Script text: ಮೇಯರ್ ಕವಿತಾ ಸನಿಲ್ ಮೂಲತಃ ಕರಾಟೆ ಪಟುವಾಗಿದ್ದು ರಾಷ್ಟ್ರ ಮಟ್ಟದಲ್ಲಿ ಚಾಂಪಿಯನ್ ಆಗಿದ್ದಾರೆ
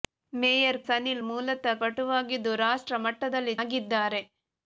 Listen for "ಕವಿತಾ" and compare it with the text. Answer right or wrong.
wrong